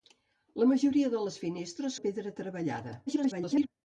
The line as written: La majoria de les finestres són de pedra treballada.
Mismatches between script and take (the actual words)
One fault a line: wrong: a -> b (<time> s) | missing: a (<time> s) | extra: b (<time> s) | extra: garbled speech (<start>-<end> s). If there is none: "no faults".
missing: són (2.0 s)
extra: garbled speech (3.1-3.7 s)